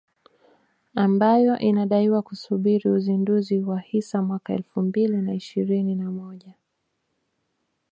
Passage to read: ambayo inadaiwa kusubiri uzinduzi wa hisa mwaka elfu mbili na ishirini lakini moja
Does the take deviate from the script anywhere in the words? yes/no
yes